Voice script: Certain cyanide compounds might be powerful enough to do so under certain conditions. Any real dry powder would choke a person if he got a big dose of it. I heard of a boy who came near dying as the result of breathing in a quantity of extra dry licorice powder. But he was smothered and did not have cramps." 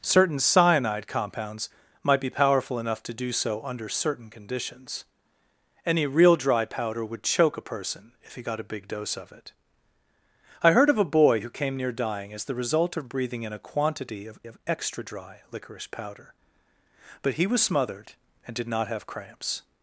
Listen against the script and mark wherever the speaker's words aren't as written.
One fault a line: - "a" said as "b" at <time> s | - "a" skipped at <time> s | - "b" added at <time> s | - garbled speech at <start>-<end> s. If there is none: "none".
- "of" added at 14.4 s